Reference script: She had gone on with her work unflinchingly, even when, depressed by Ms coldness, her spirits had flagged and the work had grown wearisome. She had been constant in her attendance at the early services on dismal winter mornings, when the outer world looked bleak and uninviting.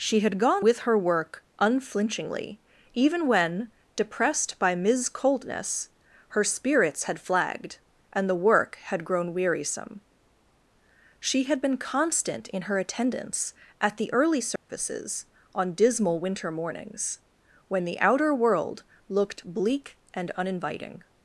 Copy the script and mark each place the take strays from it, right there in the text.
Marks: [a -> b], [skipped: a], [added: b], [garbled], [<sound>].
She had gone [skipped: on] with her work unflinchingly, even when, depressed by Ms coldness, her spirits had flagged and the work had grown wearisome. She had been constant in her attendance at the early services [dropout] on dismal winter mornings, when the outer world looked bleak and uninviting.